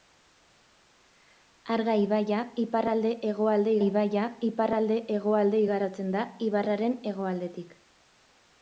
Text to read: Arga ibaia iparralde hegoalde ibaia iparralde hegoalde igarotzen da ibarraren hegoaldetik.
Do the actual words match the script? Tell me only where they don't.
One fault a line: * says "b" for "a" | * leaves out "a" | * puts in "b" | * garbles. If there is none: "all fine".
all fine